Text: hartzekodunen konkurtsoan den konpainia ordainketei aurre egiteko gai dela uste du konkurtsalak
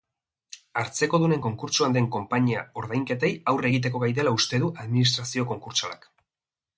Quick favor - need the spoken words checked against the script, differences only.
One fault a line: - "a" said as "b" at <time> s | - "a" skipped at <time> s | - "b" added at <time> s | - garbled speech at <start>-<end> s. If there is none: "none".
- "administrazio" added at 4.8 s